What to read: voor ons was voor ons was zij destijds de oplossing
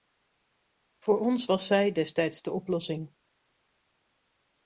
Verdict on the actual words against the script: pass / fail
fail